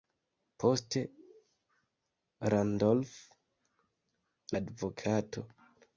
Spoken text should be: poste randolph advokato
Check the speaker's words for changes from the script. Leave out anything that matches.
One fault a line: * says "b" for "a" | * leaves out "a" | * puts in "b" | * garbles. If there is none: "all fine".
all fine